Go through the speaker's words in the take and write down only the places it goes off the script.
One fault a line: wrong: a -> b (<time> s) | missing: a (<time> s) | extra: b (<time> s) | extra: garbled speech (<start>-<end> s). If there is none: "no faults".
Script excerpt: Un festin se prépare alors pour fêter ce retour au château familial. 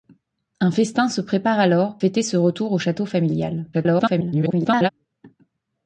missing: pour (2.0 s)
extra: garbled speech (3.7-4.9 s)